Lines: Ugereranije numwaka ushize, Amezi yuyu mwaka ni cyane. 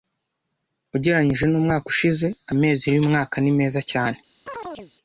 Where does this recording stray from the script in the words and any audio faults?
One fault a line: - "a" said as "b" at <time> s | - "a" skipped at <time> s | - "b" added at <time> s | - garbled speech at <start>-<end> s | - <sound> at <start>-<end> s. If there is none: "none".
- "meza" added at 3.6 s
- chirp at 4.5-4.9 s